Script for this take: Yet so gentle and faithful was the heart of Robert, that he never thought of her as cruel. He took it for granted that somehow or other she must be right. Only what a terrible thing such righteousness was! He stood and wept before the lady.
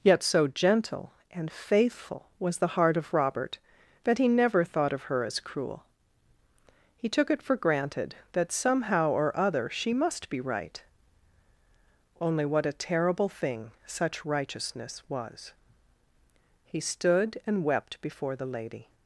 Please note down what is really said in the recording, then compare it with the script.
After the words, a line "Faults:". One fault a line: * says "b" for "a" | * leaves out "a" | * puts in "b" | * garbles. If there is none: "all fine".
Yet so gentle and faithful was the heart of Robert, that he never thought of her as cruel. He took it for granted that somehow or other she must be right. Only what a terrible thing such righteousness was! He stood and wept before the lady.
Faults:
all fine